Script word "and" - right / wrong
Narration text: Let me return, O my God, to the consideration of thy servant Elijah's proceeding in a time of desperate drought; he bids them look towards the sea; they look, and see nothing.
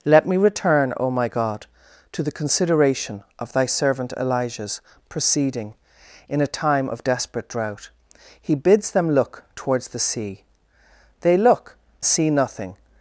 wrong